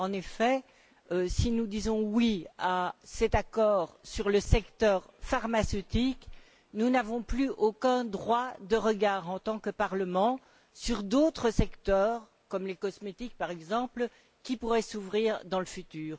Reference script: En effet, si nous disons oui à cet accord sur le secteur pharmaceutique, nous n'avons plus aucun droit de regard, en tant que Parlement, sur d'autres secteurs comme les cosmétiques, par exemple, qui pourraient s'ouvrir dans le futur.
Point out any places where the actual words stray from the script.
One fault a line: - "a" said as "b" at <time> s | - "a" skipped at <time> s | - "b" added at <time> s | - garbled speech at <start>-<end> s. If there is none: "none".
none